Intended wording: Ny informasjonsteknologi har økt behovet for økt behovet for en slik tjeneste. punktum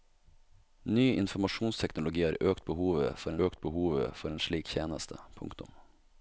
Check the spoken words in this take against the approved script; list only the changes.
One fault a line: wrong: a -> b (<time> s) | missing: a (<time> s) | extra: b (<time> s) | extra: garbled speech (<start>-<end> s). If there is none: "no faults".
no faults